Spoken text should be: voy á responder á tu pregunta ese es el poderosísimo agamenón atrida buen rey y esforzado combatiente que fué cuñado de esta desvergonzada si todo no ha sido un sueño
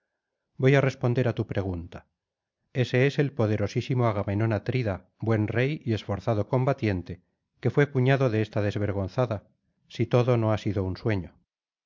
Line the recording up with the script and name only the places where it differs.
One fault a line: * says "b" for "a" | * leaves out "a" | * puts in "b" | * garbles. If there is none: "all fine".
all fine